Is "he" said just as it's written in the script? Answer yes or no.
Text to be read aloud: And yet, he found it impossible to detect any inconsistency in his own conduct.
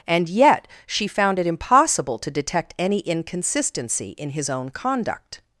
no